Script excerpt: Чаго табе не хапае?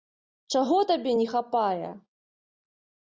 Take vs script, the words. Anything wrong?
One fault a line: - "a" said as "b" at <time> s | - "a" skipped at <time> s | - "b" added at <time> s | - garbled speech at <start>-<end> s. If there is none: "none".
none